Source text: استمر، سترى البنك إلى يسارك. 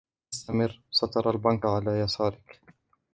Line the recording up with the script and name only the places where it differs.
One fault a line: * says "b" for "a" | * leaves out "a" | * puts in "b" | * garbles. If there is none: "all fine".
* says "على" for "إلى"